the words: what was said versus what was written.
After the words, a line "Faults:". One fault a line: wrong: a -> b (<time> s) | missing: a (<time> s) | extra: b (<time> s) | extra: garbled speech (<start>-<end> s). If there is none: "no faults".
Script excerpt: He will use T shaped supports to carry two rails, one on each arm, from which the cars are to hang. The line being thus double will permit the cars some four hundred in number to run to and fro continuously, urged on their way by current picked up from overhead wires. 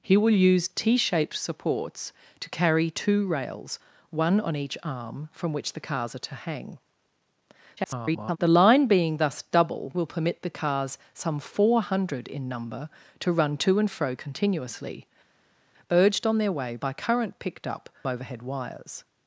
He will use T shaped supports to carry two rails, one on each arm, from which the cars are to hang. [garbled] The line being thus double will permit the cars some four hundred in number to run to and fro continuously, urged on their way by current picked up overhead wires.
Faults:
extra: garbled speech (7.8-8.4 s)
missing: from (17.9 s)